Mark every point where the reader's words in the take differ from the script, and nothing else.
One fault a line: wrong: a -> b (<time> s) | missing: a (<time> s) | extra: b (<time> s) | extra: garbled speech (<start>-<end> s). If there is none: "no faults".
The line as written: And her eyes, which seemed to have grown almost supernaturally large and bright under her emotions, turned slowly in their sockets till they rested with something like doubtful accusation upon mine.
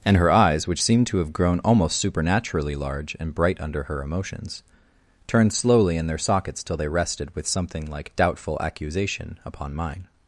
no faults